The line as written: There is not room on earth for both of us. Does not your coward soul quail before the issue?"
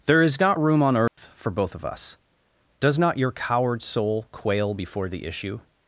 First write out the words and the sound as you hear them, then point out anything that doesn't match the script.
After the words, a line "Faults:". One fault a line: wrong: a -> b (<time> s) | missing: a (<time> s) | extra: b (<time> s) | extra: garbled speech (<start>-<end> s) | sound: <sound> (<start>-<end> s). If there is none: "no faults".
There is not room on earth for both of us. Does not your coward soul quail before the issue?"
Faults:
sound: dropout (1.1-1.2 s)